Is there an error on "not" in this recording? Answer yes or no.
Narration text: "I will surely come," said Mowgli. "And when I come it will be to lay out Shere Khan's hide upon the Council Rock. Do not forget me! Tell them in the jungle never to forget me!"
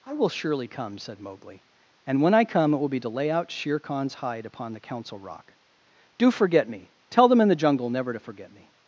yes